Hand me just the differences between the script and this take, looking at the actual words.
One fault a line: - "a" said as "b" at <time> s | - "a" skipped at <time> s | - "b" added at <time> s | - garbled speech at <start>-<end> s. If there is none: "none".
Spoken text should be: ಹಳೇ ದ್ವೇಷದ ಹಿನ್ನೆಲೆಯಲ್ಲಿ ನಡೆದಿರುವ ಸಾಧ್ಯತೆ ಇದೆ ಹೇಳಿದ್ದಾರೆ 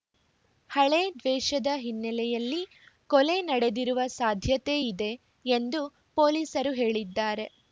- "ಕೊಲೆ" added at 3.1 s
- "ಎಂದು ಪೊಲೀಸರು" added at 5.5 s